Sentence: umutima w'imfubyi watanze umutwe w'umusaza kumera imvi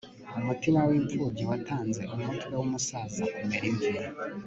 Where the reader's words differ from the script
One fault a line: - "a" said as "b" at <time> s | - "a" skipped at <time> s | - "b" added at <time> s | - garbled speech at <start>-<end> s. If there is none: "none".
none